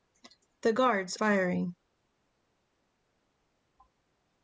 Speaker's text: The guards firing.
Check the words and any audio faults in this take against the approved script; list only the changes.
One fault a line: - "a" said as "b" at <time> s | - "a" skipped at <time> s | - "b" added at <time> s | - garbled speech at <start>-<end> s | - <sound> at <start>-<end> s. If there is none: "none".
none